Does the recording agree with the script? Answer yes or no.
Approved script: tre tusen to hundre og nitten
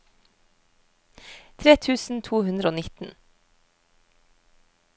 yes